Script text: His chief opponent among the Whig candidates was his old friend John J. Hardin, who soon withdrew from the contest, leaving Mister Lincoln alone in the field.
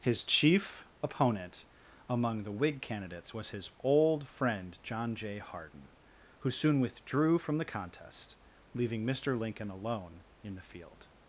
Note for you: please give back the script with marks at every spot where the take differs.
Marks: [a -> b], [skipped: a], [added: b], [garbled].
His chief opponent among the Whig candidates was his old friend John J. Hardin, who soon withdrew from the contest, leaving Mister Lincoln alone in the field.